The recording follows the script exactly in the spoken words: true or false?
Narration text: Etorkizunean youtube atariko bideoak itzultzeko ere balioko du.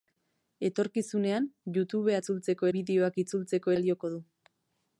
false